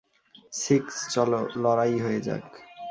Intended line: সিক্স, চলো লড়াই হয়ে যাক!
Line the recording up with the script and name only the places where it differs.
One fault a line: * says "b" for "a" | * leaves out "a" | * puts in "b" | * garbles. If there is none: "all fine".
all fine